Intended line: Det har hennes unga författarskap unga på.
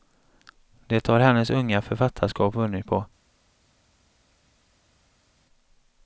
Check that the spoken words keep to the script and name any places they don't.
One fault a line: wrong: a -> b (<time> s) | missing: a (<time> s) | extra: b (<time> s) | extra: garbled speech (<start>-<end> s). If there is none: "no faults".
wrong: unga -> vunnit (2.5 s)